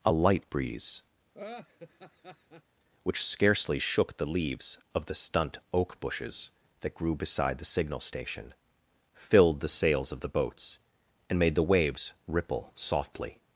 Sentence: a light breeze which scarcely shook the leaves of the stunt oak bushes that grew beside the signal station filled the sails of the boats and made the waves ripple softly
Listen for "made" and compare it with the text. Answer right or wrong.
right